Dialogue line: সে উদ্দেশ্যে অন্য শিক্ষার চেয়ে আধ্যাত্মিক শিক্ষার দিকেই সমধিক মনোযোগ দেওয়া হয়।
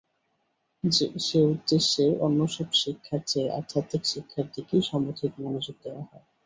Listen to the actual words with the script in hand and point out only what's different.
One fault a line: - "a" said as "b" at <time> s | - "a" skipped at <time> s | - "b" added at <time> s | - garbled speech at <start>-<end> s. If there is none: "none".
- "সব" added at 2.5 s